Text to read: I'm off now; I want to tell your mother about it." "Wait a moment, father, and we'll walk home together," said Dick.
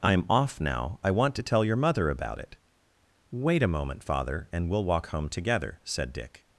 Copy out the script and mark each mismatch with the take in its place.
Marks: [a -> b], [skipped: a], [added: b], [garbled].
I'm off now; I want to tell your mother about it." "Wait a moment, father, and we'll walk home together," said Dick.